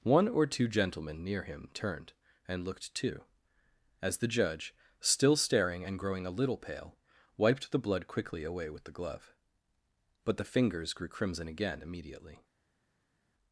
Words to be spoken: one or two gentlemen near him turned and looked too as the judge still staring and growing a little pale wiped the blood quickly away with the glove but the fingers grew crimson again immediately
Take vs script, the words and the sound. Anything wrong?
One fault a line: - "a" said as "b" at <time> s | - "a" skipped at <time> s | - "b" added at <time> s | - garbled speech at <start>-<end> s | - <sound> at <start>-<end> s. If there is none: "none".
none